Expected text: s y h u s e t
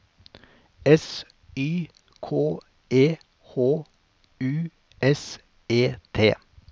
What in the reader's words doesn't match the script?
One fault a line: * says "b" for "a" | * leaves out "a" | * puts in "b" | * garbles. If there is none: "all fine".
* puts in "k e"